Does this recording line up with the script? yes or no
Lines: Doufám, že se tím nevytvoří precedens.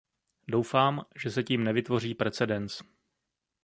yes